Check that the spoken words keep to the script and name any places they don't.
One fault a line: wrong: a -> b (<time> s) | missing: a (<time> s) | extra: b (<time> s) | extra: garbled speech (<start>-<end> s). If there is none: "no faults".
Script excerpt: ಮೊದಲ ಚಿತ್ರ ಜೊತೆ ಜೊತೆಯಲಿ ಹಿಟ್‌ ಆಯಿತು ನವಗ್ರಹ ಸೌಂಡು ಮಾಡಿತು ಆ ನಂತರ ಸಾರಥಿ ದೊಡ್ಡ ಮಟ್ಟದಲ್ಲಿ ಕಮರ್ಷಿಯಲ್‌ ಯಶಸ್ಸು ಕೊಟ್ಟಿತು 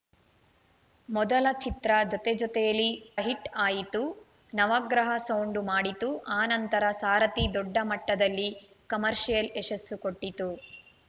no faults